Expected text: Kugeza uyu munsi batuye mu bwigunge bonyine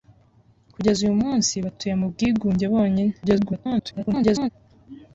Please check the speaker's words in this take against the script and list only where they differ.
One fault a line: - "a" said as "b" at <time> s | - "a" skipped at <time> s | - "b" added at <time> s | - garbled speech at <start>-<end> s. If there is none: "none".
- garbled speech at 3.2-4.5 s